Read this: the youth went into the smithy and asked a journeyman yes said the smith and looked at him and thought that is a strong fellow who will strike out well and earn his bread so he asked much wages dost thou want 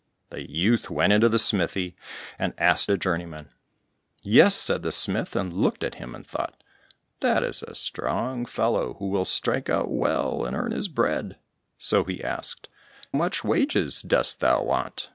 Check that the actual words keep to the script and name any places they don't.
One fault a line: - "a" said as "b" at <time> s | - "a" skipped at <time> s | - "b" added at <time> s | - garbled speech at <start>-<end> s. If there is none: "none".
none